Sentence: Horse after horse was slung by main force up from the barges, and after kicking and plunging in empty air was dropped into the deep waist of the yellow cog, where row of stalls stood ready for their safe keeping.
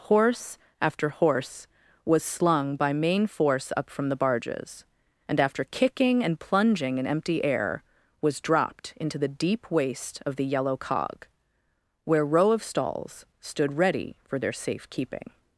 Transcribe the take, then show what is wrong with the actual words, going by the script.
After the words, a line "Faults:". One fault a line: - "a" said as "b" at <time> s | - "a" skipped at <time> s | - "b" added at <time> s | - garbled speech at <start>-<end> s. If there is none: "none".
Horse after horse was slung by main force up from the barges, and after kicking and plunging in empty air was dropped into the deep waist of the yellow cog, where row of stalls stood ready for their safe keeping.
Faults:
none